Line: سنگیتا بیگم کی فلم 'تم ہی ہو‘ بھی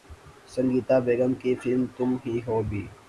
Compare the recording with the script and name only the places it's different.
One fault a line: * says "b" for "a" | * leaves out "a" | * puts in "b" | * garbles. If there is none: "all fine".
all fine